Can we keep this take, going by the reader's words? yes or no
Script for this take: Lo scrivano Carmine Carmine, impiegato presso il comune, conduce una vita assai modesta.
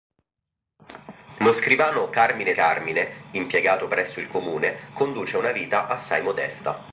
yes